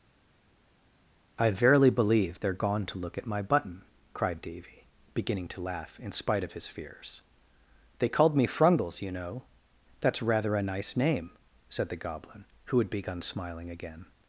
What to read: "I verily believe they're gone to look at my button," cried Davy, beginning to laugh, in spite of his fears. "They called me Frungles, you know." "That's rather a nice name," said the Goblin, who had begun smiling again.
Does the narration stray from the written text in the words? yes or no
no